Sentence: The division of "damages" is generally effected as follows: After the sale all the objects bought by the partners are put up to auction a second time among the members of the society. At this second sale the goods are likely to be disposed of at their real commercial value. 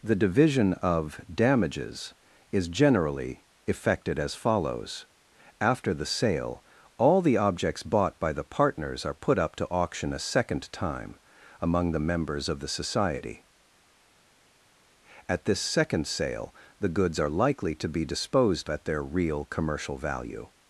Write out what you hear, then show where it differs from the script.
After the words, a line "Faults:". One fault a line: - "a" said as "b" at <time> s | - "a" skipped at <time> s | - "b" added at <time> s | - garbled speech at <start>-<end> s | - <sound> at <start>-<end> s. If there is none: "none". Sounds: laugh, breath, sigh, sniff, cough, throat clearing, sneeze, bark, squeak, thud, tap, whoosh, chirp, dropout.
The division of "damages" is generally effected as follows: After the sale all the objects bought by the partners are put up to auction a second time among the members of the society. At this second sale the goods are likely to be disposed at their real commercial value.
Faults:
- "of" skipped at 18.7 s